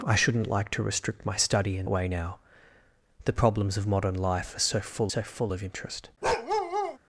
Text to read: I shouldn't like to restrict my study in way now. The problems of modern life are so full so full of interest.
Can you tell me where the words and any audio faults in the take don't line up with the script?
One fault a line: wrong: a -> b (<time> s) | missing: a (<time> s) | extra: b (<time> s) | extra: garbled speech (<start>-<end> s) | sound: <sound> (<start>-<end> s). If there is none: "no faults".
sound: bark (6.2-7.0 s)